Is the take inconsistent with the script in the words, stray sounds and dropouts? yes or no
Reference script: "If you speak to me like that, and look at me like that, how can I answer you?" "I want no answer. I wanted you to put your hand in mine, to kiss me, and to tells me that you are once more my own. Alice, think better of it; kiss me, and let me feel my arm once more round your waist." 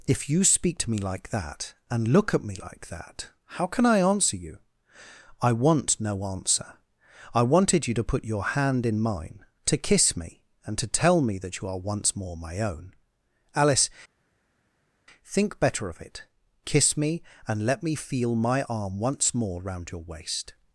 yes